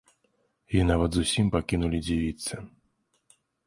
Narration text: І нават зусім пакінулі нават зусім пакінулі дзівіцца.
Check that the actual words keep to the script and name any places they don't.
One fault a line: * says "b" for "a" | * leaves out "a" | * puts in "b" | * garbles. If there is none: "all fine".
* leaves out "нават зусім пакінулі"